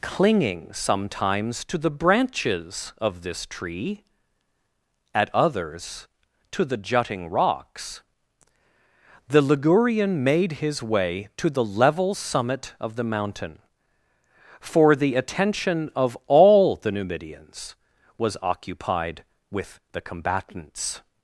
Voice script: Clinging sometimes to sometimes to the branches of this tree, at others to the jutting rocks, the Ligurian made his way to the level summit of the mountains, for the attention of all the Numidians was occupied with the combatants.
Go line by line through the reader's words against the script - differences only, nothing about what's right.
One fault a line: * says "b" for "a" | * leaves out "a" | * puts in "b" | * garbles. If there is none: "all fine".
* leaves out "sometimes to"
* says "mountain" for "mountains"